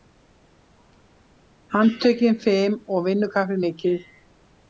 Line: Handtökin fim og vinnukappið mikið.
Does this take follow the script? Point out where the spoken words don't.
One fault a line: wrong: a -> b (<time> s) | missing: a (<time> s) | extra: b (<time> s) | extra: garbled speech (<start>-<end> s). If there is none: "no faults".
no faults